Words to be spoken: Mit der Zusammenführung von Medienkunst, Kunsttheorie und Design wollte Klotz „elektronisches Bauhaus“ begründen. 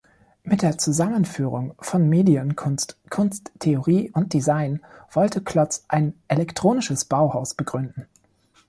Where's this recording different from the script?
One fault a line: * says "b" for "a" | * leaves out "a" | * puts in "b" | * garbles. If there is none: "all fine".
* puts in "ein"